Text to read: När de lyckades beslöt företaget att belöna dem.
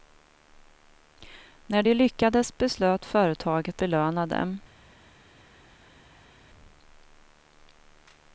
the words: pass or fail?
fail